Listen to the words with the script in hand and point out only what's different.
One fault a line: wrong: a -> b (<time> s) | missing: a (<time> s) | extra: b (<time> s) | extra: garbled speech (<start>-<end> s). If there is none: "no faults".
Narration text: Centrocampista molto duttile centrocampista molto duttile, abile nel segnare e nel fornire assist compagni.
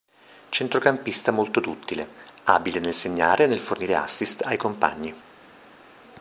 missing: centrocampista molto duttile (2.1 s)
extra: ai (4.4 s)